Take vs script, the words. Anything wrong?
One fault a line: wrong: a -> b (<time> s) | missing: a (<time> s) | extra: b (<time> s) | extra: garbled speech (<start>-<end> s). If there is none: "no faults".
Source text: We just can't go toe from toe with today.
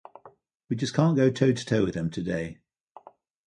wrong: from -> to (1.5 s)
extra: them (1.9 s)